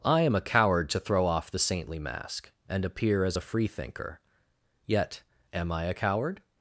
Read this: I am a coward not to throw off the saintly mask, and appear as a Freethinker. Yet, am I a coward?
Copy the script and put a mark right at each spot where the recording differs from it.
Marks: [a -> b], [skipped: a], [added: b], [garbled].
I am a coward [skipped: not] to throw off the saintly mask, and appear as a Freethinker. Yet, am I a coward?